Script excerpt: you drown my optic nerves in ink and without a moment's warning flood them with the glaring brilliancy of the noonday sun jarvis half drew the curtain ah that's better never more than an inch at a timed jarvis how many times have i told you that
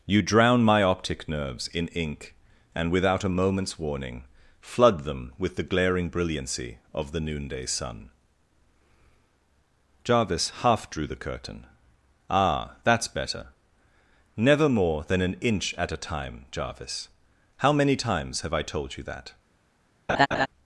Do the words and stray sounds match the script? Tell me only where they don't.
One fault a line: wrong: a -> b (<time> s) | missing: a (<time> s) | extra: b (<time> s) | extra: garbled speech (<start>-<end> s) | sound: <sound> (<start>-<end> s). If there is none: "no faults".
wrong: timed -> time (16.0 s)
sound: laugh (20.1-20.5 s)